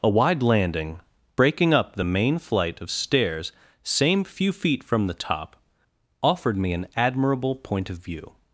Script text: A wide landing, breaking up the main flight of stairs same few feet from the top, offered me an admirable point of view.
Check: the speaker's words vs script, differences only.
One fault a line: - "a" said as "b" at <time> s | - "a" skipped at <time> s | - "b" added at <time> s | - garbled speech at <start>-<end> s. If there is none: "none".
none